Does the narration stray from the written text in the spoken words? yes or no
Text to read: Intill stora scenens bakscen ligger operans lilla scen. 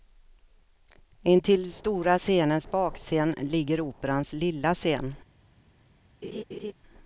no